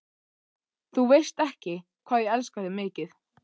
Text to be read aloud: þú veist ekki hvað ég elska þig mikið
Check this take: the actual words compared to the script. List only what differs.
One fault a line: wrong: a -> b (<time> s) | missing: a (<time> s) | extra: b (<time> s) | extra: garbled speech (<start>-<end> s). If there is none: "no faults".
no faults